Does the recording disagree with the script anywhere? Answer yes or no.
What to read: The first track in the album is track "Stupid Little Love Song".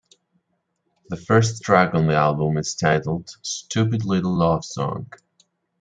yes